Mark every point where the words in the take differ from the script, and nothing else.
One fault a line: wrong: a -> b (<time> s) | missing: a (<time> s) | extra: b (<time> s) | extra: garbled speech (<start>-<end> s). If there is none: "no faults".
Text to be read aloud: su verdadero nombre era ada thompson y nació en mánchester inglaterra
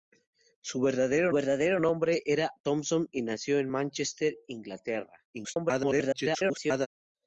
extra: verdadero (1.3 s)
missing: ada (2.5 s)
extra: garbled speech (5.3-6.9 s)